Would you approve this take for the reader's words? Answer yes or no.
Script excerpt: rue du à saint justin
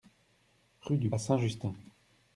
yes